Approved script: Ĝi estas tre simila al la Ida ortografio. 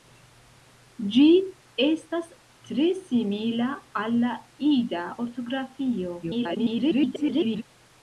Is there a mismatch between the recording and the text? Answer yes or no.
yes